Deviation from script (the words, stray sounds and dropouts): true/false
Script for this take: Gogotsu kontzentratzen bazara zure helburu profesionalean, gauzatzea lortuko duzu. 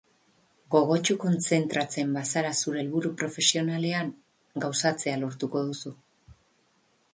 false